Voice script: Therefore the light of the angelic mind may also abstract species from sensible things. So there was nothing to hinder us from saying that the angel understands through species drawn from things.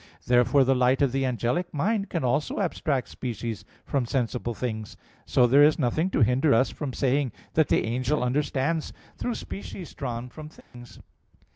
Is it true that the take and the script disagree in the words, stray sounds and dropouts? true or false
true